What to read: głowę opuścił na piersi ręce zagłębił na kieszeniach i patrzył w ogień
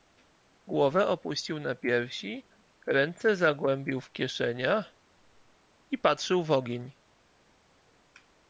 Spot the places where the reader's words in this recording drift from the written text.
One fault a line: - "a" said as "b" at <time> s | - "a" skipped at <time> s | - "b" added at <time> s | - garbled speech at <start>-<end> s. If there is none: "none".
- "na" said as "w" at 4.0 s